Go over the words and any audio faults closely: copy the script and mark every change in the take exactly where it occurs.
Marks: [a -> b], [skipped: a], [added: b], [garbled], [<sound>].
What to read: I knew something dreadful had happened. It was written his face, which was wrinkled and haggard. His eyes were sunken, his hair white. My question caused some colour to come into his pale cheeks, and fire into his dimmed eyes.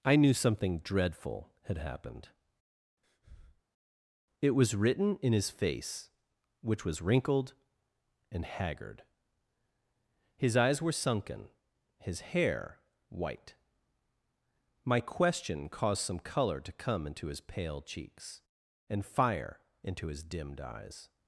I knew something dreadful had happened. [breath] It was written [added: in] his face, which was wrinkled and haggard. His eyes were sunken, his hair white. My question caused some colour to come into his pale cheeks, and fire into his dimmed eyes.